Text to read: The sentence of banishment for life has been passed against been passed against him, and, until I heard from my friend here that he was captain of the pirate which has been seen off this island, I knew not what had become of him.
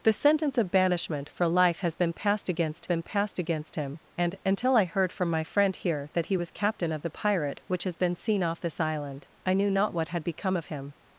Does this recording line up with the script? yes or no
yes